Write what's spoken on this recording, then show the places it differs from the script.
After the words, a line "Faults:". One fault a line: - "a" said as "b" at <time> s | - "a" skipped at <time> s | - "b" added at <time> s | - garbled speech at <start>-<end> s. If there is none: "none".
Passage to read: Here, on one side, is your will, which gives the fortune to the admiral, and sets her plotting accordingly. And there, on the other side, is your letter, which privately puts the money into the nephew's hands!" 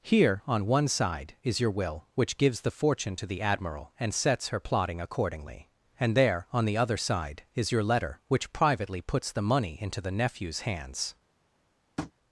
Here, on one side, is your will, which gives the fortune to the admiral, and sets her plotting accordingly. And there, on the other side, is your letter, which privately puts the money into the nephew's hands!"
Faults:
none